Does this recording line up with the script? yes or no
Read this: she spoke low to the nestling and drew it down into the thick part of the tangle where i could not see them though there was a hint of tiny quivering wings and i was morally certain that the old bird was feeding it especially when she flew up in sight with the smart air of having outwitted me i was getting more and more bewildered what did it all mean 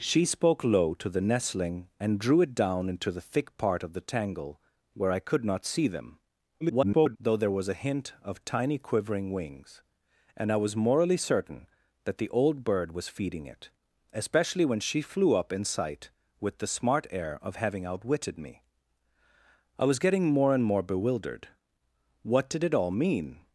no